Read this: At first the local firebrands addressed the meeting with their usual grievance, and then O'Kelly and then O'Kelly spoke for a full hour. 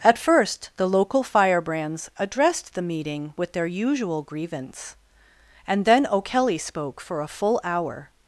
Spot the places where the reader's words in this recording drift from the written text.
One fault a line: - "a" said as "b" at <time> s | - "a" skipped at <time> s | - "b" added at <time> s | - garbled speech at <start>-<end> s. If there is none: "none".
- "and then O'Kelly" skipped at 6.6 s